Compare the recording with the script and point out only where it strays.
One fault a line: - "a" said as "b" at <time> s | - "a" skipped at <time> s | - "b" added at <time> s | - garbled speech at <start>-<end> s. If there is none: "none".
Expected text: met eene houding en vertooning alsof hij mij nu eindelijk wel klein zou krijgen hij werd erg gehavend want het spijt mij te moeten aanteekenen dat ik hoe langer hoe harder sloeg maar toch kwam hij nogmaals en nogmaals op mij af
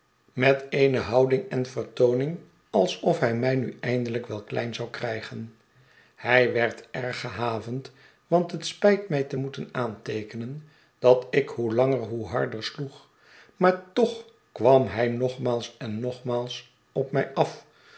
none